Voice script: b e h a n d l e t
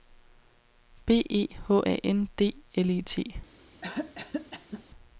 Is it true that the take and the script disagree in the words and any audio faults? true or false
true